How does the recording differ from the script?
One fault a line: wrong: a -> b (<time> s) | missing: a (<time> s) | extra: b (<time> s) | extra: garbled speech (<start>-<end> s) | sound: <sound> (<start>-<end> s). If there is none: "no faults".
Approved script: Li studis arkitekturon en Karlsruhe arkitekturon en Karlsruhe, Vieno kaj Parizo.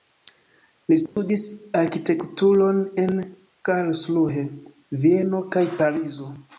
sound: dropout (1.1-1.2 s)
missing: arkitekturon en Karlsruhe (4.5 s)